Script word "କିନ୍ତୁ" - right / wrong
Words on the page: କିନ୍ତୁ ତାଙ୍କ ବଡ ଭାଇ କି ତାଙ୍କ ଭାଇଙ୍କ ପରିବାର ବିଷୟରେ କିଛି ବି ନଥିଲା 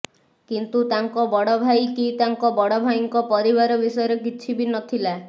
right